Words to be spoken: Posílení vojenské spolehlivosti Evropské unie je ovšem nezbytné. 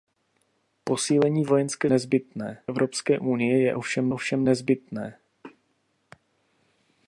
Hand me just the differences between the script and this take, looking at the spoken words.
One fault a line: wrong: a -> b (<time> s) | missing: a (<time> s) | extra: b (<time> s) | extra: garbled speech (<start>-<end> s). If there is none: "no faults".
wrong: spolehlivosti -> nezbytné (1.9 s)
extra: ovšem (4.1 s)